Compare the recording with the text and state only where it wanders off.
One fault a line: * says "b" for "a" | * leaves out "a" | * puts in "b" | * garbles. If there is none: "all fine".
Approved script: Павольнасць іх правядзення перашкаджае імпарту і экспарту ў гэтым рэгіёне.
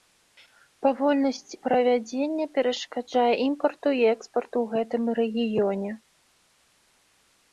* leaves out "іх"